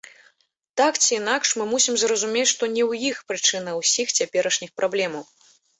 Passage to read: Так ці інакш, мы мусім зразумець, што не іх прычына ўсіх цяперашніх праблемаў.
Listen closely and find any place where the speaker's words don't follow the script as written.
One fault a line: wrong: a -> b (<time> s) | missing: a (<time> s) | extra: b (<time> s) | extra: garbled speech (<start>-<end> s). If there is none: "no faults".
extra: ў (2.9 s)